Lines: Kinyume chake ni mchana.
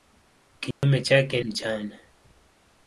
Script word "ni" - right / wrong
wrong